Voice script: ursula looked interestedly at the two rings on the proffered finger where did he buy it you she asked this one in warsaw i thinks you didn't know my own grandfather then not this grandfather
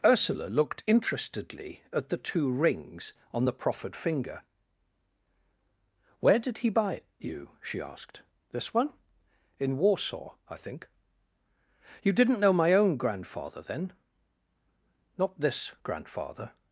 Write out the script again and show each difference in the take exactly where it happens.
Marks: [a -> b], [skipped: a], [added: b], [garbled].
ursula looked interestedly at the two rings on the proffered finger where did he buy it you she asked this one in warsaw i [thinks -> think] you didn't know my own grandfather then not this grandfather